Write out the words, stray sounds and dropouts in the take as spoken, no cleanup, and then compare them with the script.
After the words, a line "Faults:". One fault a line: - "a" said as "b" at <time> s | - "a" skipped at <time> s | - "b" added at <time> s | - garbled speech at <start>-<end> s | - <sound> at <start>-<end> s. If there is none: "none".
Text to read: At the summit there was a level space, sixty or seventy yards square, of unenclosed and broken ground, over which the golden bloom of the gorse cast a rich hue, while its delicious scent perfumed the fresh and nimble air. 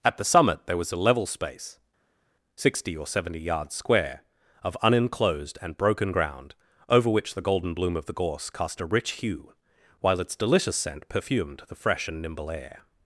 At the summit there was a level space, sixty or seventy yards square, of unenclosed and broken ground, over which the golden bloom of the gorse cast a rich hue, while its delicious scent perfumed the fresh and nimble air.
Faults:
none